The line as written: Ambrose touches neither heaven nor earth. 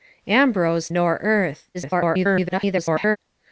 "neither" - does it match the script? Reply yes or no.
no